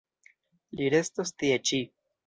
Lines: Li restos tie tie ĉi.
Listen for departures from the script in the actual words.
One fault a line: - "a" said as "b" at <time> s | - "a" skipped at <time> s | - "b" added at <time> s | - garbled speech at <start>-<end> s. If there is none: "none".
- "tie" skipped at 1.6 s